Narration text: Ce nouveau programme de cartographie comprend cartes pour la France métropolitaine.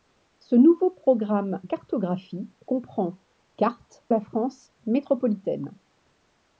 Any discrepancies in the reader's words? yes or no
yes